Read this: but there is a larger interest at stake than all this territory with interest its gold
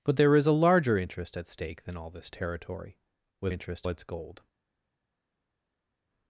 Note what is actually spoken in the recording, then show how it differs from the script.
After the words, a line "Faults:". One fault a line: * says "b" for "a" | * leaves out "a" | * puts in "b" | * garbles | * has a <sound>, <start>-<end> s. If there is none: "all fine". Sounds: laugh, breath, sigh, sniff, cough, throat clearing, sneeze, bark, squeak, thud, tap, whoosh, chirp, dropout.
but there is a larger interest at stake than all this territory with interest its gold
Faults:
all fine